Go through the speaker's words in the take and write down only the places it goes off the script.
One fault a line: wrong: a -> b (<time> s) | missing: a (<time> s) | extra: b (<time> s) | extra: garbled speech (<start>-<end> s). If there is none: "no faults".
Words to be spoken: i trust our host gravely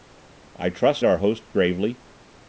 no faults